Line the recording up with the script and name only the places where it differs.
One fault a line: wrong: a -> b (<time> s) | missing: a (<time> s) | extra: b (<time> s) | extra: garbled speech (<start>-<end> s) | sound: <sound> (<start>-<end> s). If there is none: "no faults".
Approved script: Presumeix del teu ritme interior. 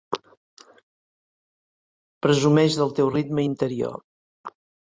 no faults